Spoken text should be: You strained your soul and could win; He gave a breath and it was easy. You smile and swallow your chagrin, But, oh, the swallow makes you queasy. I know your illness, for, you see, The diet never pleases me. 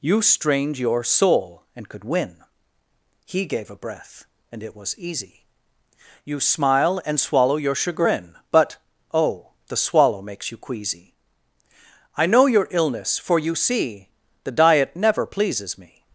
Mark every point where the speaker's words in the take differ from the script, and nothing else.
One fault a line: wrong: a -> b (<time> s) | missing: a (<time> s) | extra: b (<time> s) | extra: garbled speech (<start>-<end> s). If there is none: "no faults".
no faults